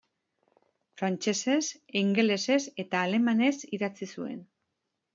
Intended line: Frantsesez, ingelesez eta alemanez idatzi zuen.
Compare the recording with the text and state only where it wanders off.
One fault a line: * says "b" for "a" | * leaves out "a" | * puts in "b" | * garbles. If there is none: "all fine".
all fine